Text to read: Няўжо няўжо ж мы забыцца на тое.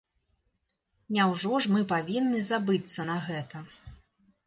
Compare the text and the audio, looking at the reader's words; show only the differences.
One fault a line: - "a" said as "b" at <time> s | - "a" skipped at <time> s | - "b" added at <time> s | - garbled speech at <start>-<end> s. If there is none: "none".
- "няўжо" skipped at 1.6 s
- "павінны" added at 1.9 s
- "тое" said as "гэта" at 3.3 s